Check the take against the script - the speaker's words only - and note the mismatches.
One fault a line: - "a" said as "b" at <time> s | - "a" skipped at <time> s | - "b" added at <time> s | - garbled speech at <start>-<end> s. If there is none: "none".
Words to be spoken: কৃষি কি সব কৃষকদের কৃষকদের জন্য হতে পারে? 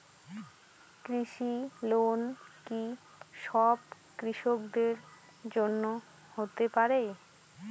- "লোন" added at 1.8 s
- "কৃষকদের" skipped at 4.9 s